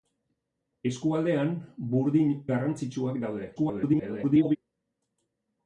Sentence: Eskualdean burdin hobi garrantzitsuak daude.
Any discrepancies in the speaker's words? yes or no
yes